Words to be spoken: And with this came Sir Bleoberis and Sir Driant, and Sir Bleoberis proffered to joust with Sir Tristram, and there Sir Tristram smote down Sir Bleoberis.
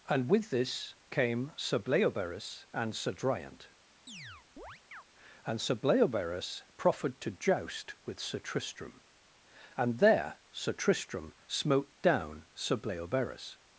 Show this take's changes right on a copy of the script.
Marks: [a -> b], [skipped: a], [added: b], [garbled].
And with this came Sir Bleoberis and Sir Driant, and Sir Bleoberis proffered to joust with Sir Tristram, and there Sir Tristram smote down Sir Bleoberis.